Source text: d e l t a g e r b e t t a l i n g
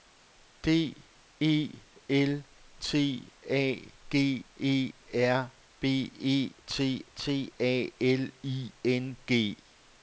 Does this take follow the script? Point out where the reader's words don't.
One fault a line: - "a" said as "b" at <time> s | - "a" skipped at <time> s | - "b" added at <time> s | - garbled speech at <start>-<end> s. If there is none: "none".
none